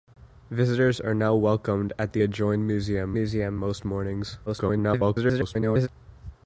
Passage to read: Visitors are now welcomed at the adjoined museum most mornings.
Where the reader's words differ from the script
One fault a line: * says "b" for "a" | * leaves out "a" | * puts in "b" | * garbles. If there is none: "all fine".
* puts in "museum"
* garbles